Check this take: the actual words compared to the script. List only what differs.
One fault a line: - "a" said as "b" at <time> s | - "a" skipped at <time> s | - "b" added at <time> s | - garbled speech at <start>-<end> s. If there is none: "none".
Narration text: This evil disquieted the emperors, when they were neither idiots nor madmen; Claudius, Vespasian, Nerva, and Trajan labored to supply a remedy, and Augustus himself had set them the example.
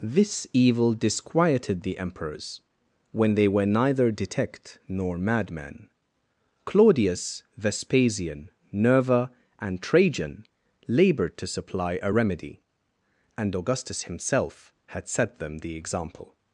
- "idiots" said as "detect" at 4.1 s